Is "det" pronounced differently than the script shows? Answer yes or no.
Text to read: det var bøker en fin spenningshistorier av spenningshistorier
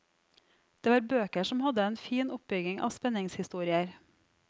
no